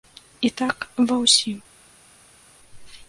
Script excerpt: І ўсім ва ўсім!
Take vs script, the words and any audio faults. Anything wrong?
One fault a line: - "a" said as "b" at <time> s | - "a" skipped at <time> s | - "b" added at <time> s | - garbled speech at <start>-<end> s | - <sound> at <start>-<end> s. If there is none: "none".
- "ўсім" said as "так" at 0.6 s